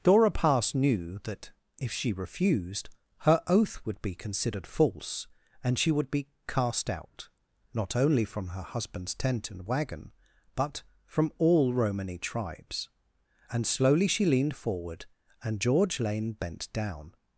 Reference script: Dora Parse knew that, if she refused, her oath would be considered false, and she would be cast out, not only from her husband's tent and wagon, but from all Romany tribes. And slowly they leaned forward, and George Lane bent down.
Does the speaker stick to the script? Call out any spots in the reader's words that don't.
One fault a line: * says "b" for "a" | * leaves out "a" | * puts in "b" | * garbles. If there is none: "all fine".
* says "she" for "they"